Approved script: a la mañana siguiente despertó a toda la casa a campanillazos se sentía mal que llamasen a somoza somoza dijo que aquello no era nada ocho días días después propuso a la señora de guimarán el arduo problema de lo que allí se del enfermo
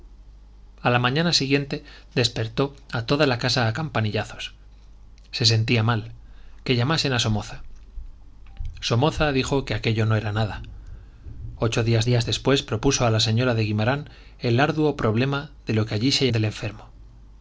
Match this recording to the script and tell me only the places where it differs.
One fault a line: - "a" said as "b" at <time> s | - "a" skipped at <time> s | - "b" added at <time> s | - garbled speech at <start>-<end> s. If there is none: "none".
none